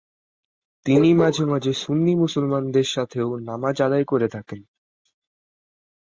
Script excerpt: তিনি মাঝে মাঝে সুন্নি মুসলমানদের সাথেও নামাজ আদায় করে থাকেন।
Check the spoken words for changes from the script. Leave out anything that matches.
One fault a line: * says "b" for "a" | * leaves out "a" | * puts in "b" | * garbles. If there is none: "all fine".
all fine